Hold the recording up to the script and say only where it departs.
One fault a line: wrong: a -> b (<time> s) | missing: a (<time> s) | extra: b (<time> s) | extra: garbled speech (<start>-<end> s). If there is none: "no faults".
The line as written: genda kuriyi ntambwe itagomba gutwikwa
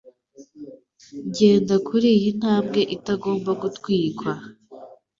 no faults